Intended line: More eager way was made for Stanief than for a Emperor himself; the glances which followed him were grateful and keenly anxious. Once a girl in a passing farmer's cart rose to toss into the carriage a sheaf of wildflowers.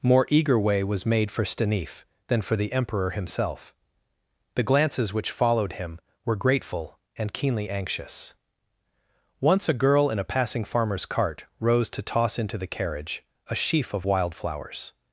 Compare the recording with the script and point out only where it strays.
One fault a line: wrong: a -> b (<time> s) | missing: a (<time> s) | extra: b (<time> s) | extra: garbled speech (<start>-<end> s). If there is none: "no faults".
wrong: a -> the (2.5 s)